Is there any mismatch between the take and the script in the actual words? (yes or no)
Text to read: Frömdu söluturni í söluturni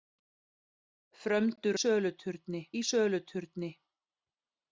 no